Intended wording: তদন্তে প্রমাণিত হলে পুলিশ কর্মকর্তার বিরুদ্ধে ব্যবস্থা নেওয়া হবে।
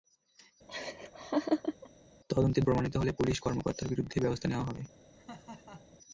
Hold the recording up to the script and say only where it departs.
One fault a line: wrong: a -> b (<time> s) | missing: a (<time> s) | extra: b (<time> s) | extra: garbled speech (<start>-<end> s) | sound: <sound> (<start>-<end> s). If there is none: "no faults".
sound: laugh (0.7-1.9 s)
sound: laugh (5.1-6.0 s)